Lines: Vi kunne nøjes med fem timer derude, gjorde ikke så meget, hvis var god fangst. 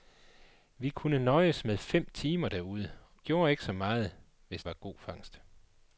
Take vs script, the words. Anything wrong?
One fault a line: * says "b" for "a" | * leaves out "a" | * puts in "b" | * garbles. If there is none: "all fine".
all fine